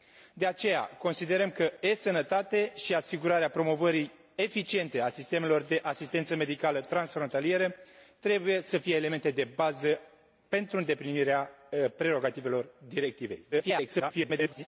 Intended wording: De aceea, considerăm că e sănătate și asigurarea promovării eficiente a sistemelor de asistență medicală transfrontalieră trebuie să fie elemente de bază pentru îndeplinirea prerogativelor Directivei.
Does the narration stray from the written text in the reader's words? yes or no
yes